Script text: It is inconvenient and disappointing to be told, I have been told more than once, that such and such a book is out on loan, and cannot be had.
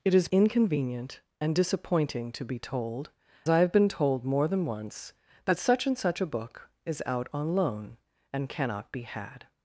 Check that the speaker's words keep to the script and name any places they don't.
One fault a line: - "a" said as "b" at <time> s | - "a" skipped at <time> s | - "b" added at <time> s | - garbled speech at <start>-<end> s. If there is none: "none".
none